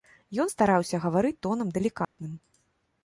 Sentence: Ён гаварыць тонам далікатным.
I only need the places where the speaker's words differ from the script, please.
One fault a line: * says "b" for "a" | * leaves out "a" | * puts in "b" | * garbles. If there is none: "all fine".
* puts in "стараўся"